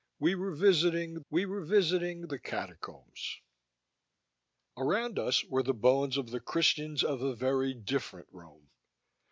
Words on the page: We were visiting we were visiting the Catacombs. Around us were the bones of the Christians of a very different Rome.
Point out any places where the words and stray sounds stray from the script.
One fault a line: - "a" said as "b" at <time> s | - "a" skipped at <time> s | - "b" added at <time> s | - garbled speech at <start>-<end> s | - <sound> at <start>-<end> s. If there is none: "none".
none